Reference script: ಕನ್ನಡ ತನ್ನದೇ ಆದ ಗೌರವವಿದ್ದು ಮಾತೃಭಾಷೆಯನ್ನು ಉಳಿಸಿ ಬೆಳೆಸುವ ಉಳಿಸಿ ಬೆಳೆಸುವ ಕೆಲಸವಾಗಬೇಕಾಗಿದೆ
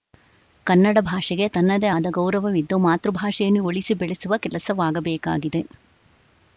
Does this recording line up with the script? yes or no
no